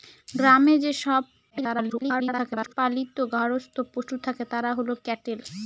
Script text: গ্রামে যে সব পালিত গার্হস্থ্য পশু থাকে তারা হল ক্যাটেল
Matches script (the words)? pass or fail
fail